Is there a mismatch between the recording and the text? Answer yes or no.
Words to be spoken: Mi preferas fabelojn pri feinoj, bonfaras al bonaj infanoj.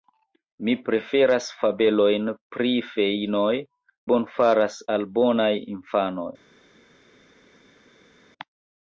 no